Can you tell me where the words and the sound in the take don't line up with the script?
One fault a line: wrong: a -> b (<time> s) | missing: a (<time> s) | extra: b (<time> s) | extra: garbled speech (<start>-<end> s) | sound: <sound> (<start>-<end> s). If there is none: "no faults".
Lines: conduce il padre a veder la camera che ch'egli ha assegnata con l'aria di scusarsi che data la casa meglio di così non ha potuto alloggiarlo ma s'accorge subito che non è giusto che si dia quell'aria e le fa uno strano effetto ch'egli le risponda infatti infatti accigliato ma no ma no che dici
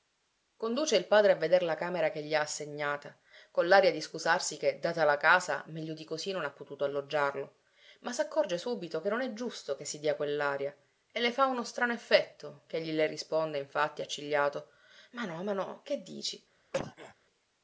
wrong: ch'egli -> gli (2.2 s)
missing: infatti (14.0 s)
sound: cough (16.7-17.1 s)